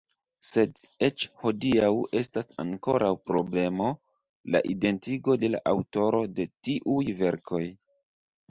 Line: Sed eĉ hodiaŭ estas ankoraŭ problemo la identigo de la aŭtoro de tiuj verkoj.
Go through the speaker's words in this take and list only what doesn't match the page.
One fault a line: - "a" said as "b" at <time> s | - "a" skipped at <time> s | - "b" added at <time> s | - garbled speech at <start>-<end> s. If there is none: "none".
none